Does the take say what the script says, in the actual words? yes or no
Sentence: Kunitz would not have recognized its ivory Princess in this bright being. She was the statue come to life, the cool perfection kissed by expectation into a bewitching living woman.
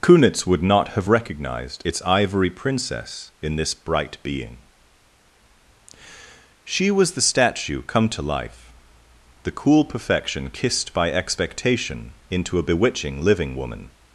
yes